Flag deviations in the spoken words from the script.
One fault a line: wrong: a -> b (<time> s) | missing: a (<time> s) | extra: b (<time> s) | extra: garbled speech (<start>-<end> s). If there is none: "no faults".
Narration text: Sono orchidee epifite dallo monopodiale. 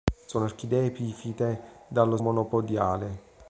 no faults